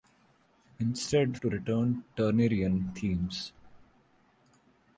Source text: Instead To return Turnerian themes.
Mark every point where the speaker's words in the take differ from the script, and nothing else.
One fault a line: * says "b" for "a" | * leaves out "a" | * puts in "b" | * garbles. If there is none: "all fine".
all fine